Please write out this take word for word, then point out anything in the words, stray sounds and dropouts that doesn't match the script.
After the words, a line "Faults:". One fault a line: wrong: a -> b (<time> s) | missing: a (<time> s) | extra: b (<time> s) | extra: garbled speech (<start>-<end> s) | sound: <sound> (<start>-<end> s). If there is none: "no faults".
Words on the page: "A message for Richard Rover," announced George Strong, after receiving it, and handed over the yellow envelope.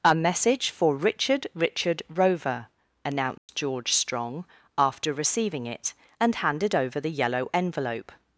"A message for Richard Richard Rover," announced George Strong, after receiving it, and handed over the yellow envelope.
Faults:
extra: Richard (1.5 s)
sound: dropout (3.4-3.5 s)